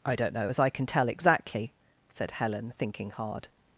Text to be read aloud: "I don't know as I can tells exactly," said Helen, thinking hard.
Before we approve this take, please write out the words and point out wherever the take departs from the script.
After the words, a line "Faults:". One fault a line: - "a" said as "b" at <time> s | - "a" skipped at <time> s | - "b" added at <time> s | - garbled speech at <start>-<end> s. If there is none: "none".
"I don't know as I can tell exactly," said Helen, thinking hard.
Faults:
- "tells" said as "tell" at 0.9 s